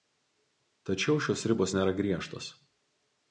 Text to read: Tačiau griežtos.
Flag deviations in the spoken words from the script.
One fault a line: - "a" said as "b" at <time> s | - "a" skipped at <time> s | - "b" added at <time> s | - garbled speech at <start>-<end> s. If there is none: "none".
- "šios ribos nėra" added at 1.2 s